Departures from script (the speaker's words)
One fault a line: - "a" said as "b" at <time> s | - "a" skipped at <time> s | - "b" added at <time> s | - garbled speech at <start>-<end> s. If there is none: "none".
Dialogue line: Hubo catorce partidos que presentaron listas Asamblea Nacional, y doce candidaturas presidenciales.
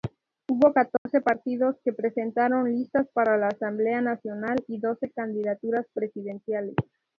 - "para la" added at 3.1 s